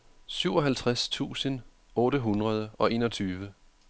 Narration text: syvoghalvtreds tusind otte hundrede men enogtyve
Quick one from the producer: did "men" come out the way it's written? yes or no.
no